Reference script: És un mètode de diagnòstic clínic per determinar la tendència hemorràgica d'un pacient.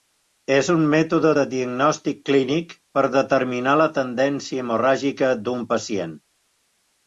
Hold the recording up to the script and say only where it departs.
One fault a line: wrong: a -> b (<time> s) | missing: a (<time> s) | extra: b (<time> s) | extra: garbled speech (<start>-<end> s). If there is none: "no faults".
no faults